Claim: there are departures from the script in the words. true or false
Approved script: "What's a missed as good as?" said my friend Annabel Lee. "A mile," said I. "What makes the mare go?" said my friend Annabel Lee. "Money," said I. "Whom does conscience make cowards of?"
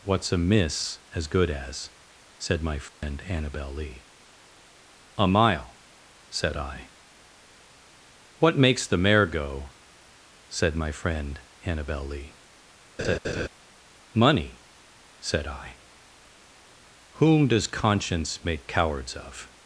true